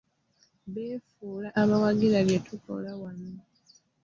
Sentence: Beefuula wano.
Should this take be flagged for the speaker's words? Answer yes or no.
yes